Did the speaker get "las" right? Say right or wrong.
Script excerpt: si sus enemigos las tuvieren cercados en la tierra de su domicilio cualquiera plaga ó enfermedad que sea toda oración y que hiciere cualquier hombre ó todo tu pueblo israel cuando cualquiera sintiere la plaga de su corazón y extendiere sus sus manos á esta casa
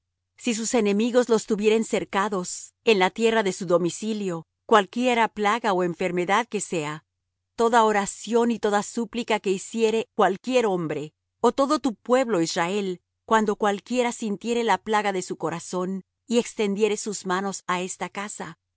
wrong